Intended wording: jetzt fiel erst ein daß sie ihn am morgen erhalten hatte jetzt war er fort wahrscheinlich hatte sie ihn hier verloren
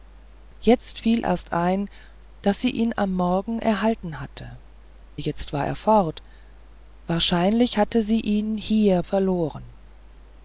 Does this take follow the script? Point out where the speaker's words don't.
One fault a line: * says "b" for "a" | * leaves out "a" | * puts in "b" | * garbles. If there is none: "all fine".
all fine